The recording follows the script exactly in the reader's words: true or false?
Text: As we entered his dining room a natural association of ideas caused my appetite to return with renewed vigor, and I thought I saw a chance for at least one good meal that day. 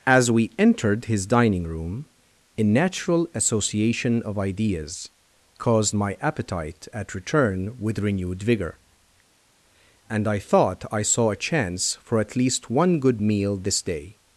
false